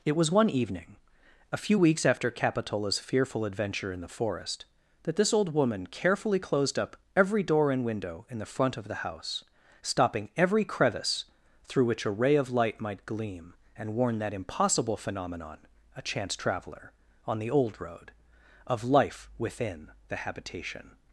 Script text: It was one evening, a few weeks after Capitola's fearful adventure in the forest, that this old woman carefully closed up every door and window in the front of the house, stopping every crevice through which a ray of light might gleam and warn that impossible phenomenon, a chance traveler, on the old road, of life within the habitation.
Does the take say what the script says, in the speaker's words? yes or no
yes